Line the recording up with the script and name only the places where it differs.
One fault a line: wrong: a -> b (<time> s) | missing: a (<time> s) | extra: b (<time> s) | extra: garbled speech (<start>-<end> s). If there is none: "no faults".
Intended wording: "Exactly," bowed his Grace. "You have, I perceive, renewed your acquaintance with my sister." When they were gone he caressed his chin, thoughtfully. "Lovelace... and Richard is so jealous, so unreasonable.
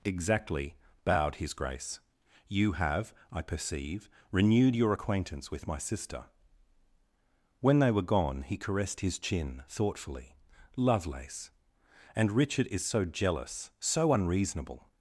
no faults